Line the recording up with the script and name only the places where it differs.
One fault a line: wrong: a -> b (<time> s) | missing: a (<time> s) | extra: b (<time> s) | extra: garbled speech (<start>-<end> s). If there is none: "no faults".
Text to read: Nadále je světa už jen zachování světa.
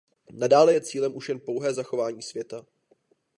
wrong: světa -> cílem (0.8 s)
extra: pouhé (1.4 s)